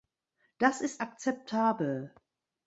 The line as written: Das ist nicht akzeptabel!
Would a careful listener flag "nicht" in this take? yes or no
yes